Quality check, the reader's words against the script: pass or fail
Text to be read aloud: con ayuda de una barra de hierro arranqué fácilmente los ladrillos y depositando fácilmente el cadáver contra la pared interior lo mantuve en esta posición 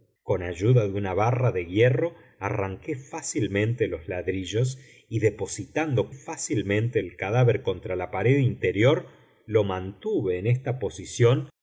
pass